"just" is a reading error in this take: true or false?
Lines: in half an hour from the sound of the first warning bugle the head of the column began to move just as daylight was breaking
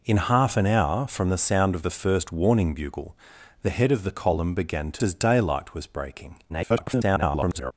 true